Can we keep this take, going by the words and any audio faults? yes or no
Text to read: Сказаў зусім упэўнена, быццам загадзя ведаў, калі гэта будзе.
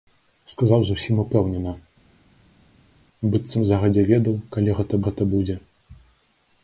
no